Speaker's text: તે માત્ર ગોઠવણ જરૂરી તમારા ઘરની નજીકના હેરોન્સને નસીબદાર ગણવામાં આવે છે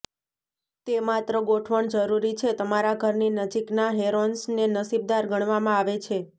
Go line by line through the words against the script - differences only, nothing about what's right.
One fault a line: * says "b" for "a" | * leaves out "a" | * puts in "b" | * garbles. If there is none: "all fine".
* puts in "છે"